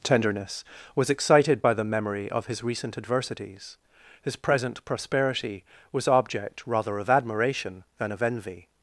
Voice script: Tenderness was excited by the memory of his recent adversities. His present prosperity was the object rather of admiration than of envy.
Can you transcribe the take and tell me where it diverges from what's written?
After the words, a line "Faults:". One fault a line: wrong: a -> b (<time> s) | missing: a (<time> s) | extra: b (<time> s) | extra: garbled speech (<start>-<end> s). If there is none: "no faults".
Tenderness was excited by the memory of his recent adversities. His present prosperity was object rather of admiration than of envy.
Faults:
missing: the (6.1 s)